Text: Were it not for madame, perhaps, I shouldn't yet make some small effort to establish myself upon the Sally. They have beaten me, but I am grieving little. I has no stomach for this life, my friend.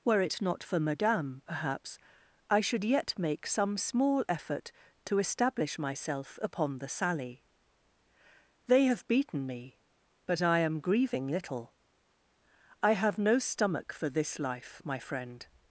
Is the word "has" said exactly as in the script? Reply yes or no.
no